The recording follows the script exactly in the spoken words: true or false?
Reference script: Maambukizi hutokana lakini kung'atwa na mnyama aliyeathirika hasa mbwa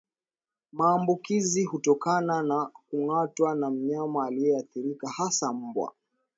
false